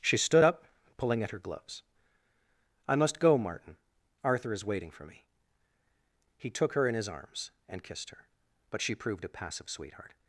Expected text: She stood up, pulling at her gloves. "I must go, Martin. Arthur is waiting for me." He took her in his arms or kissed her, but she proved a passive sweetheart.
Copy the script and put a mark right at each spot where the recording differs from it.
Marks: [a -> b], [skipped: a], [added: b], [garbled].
She stood up, pulling at her gloves. "I must go, Martin. Arthur is waiting for me." He took her in his arms [or -> and] kissed her, but she proved a passive sweetheart.